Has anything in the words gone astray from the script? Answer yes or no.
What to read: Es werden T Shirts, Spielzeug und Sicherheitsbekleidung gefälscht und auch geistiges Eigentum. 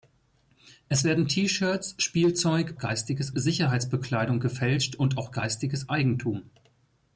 yes